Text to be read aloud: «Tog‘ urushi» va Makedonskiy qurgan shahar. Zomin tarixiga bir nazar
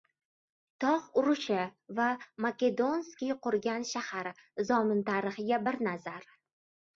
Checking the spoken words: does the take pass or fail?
pass